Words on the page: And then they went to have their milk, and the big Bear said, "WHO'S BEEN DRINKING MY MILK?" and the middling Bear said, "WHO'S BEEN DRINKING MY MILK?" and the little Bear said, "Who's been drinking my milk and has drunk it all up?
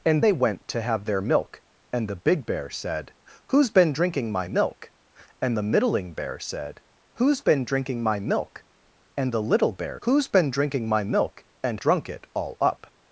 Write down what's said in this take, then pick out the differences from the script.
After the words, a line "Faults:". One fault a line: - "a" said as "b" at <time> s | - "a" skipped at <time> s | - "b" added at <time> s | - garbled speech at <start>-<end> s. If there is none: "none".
And they went to have their milk, and the big Bear said, "WHO'S BEEN DRINKING MY MILK?" and the middling Bear said, "WHO'S BEEN DRINKING MY MILK?" and the little Bear "Who's been drinking my milk and drunk it all up?
Faults:
- "then" skipped at 0.2 s
- "said" skipped at 10.0 s
- "has" skipped at 11.8 s